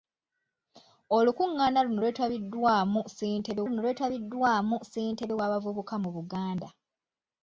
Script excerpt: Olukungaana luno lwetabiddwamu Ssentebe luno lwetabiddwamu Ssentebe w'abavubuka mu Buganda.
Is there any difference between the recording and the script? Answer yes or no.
no